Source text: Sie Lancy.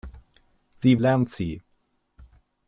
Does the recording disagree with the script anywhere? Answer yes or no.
no